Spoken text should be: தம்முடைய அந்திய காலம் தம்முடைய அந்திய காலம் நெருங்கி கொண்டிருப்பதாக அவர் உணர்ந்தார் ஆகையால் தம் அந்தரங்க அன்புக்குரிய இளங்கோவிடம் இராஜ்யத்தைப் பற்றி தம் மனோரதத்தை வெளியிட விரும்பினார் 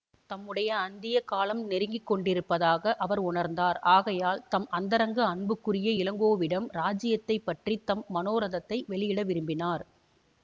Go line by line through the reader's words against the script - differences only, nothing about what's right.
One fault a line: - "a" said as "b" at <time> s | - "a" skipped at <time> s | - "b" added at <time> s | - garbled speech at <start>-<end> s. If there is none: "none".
- "தம்முடைய அந்திய காலம்" skipped at 1.6 s